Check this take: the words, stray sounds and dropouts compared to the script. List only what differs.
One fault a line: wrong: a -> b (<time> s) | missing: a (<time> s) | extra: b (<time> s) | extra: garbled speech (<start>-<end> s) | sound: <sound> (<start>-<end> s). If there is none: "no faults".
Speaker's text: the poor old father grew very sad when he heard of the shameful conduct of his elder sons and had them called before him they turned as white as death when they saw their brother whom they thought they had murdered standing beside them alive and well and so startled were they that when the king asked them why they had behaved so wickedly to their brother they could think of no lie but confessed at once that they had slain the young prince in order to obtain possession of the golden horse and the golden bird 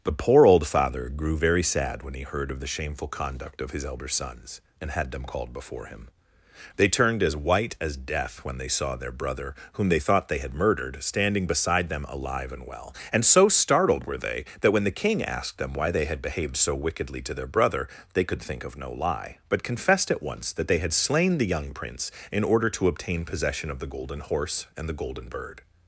no faults